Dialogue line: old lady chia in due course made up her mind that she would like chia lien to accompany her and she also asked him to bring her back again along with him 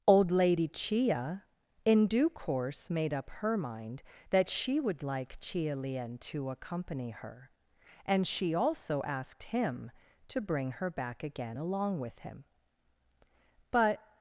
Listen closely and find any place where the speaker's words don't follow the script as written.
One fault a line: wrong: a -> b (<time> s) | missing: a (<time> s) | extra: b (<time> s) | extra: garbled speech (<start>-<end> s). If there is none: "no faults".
extra: but (13.7 s)